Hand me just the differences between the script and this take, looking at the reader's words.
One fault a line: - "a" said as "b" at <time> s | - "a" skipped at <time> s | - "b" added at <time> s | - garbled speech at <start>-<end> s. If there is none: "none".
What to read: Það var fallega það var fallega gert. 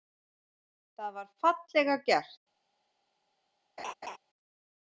- "það var fallega" skipped at 2.0 s